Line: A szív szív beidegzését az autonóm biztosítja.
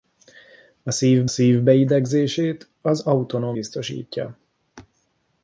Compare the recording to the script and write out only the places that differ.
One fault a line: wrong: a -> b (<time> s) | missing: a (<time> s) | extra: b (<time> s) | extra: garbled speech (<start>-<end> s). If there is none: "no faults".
no faults